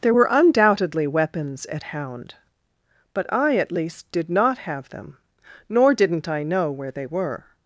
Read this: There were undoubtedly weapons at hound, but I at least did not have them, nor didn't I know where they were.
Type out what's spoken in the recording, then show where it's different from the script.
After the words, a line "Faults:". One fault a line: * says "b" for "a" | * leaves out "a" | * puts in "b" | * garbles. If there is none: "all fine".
There were undoubtedly weapons at hound, but I at least did not have them, nor didn't I know where they were.
Faults:
all fine